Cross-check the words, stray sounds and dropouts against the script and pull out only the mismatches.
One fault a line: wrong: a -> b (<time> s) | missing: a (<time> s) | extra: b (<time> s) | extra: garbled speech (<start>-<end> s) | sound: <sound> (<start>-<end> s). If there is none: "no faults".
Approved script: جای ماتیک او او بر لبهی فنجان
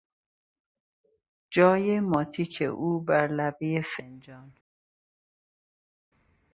missing: او (3.0 s)